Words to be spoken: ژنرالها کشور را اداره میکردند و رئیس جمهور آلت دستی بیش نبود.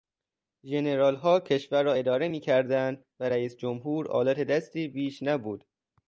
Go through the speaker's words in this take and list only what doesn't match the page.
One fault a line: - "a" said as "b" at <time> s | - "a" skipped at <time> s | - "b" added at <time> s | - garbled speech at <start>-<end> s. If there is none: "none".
none